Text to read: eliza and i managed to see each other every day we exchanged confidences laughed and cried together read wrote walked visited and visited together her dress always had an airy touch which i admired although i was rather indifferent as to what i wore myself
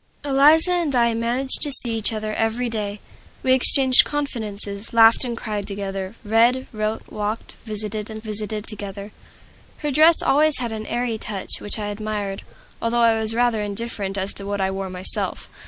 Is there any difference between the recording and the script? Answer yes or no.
no